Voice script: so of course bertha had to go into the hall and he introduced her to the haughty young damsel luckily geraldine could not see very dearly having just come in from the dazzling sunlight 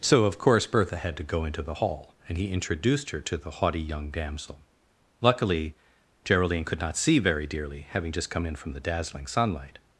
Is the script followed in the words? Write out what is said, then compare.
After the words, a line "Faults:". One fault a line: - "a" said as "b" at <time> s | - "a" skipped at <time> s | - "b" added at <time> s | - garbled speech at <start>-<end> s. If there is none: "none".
so of course bertha had to go into the hall and he introduced her to the haughty young damsel luckily geraldine could not see very dearly having just come in from the dazzling sunlight
Faults:
none